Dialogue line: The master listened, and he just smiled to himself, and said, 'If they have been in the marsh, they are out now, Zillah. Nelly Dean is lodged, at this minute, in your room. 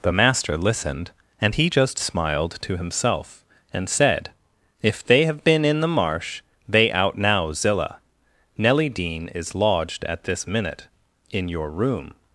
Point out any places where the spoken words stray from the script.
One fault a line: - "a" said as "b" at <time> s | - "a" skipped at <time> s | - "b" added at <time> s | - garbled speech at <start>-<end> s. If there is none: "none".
- "are" skipped at 6.9 s